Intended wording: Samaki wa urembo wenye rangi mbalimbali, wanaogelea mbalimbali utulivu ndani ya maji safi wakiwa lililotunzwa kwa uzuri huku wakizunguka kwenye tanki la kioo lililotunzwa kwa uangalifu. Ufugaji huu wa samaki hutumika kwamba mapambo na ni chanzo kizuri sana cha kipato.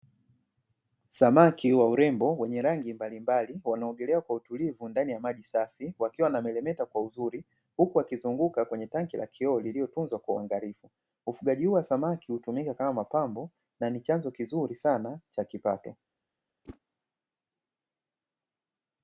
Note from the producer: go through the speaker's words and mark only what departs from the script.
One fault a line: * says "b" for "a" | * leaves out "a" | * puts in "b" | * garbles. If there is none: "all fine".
* says "kwa" for "mbalimbali"
* says "wanameremeta" for "lililotunzwa"
* says "kama" for "kwamba"